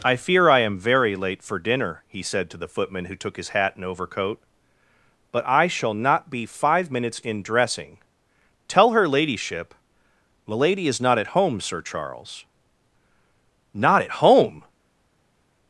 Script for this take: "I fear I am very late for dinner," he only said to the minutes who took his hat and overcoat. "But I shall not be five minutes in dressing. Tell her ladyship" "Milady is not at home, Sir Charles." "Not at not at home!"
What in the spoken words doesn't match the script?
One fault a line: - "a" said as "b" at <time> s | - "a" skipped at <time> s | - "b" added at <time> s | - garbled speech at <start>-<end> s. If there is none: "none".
- "only" skipped at 2.2 s
- "minutes" said as "footman" at 2.6 s
- "not at" skipped at 14.1 s